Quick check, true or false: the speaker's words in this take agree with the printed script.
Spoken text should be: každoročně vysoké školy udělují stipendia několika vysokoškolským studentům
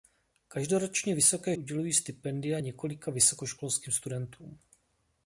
false